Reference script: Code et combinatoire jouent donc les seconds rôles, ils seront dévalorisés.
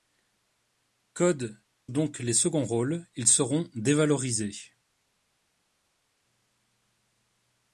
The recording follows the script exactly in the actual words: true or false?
false